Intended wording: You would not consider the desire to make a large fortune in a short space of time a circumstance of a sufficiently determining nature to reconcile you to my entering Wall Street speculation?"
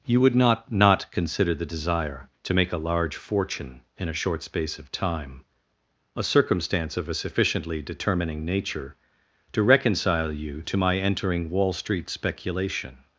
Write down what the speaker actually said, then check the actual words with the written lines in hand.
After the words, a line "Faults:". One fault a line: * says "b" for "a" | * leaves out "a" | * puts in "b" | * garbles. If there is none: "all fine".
You would not not consider the desire to make a large fortune in a short space of time a circumstance of a sufficiently determining nature to reconcile you to my entering Wall Street speculation?"
Faults:
* puts in "not"